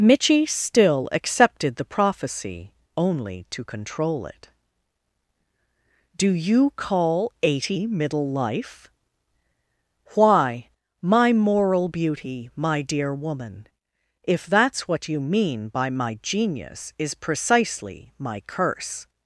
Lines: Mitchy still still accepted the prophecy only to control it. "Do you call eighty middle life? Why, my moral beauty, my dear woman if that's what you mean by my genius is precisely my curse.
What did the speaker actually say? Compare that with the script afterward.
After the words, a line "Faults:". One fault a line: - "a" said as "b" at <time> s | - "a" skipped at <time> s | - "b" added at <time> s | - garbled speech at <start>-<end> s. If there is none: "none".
Mitchy still accepted the prophecy only to control it. "Do you call eighty middle life? Why, my moral beauty, my dear woman if that's what you mean by my genius is precisely my curse.
Faults:
- "still" skipped at 1.1 s